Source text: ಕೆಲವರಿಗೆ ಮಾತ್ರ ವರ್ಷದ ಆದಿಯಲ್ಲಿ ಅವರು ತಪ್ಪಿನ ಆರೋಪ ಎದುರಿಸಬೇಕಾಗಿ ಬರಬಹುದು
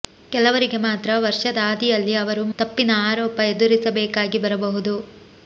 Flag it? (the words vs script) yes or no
no